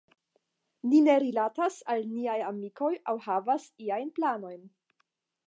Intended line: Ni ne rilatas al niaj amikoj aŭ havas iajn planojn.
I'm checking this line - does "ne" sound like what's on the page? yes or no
yes